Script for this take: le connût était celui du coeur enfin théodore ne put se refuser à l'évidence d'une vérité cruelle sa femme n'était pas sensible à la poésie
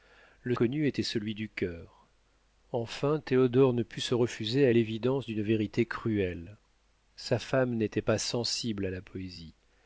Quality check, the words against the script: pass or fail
pass